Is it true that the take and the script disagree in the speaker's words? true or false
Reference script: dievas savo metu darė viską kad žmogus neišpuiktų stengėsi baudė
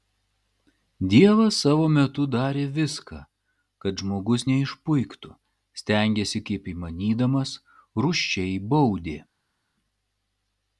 true